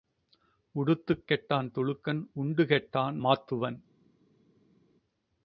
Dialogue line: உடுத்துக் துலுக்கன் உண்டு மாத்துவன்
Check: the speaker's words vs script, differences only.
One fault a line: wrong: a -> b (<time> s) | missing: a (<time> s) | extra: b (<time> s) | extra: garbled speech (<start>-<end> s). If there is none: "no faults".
extra: கெட்டான் (1.3 s)
extra: கெட்டான் (2.6 s)